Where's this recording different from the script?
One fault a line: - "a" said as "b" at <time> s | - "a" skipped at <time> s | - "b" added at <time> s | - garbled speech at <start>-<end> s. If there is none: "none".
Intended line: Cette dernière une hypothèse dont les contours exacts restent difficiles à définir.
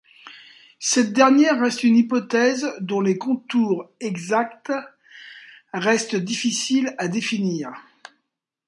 - "reste" added at 1.6 s